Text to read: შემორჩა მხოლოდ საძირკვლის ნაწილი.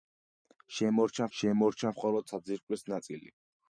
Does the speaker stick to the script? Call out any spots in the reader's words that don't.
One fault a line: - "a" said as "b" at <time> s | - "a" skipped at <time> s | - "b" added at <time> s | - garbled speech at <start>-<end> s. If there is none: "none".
- "შემორჩა" added at 1.4 s